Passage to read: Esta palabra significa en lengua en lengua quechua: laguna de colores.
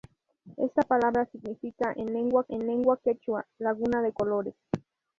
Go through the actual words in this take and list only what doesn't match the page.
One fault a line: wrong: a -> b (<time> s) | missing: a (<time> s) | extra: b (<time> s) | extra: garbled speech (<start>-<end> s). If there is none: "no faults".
no faults